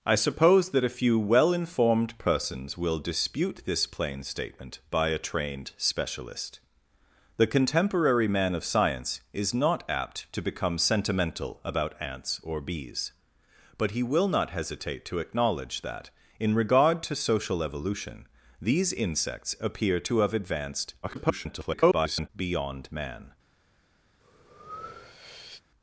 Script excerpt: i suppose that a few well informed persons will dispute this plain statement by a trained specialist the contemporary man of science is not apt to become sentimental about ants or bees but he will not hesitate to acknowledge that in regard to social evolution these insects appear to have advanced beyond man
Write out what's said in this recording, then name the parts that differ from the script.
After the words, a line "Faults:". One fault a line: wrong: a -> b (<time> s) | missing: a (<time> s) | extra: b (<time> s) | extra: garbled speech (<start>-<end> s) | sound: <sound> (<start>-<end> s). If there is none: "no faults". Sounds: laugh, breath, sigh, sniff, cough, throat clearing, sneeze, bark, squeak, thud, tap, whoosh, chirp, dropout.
i suppose that a few well informed persons will dispute this plain statement by a trained specialist the contemporary man of science is not apt to become sentimental about ants or bees but he will not hesitate to acknowledge that in regard to social evolution these insects appear to have advanced [garbled] beyond man
Faults:
extra: garbled speech (21.0-22.3 s)
sound: breath (24.2-25.6 s)